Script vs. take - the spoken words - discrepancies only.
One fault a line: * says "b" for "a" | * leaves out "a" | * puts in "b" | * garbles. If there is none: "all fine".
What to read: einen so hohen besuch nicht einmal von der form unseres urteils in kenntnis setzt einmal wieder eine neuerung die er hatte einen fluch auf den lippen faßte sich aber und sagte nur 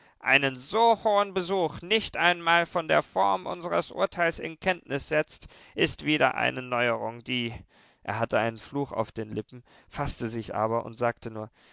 * says "ist" for "einmal"